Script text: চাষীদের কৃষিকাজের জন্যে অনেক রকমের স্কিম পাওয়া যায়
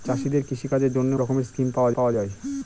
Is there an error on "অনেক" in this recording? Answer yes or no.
yes